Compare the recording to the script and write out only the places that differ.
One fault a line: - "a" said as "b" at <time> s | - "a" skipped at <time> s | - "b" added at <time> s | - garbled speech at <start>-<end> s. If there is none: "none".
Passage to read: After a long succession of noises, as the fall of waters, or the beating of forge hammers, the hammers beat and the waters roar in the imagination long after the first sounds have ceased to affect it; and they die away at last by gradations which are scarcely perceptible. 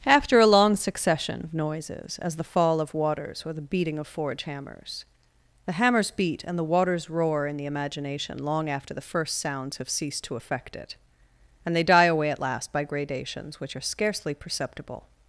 none